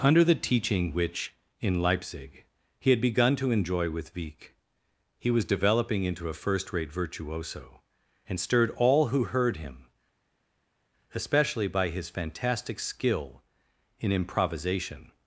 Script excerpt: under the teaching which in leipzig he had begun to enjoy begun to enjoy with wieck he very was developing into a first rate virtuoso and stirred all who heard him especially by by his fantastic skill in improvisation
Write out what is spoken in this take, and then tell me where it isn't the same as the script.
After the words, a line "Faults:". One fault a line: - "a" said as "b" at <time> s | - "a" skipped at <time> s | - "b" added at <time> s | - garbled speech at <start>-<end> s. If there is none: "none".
under the teaching which in leipzig he had begun to enjoy with wieck he was developing into a first rate virtuoso and stirred all who heard him especially by his fantastic skill in improvisation
Faults:
- "begun to enjoy" skipped at 3.9 s
- "very" skipped at 5.3 s
- "by" skipped at 11.9 s